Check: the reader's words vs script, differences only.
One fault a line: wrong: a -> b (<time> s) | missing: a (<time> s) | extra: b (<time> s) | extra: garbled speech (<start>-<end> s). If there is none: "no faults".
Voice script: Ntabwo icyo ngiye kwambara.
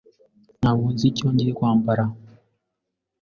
extra: nzi (0.9 s)